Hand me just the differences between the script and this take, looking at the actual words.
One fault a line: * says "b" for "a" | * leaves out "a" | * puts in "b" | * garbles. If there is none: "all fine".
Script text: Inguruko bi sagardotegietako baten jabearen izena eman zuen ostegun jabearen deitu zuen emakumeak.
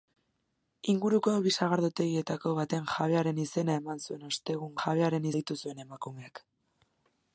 all fine